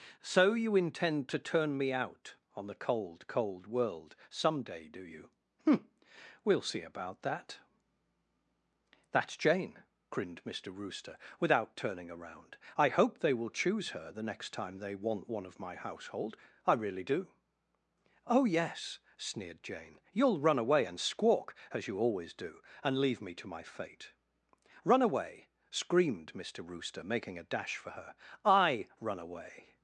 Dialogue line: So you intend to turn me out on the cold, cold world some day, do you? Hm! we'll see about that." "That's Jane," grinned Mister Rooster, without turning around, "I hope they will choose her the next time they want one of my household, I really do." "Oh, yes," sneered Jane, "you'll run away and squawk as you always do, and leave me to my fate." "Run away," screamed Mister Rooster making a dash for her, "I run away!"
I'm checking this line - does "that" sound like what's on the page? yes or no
yes